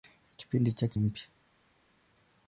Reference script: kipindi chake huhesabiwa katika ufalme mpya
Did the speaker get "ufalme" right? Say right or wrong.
wrong